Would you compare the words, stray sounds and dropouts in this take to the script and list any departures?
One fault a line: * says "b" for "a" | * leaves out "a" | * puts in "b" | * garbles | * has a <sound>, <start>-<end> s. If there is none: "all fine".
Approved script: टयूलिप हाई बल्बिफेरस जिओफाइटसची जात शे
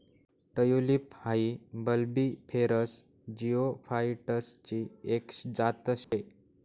* puts in "एक"
* has a dropout, 6.0-6.1 s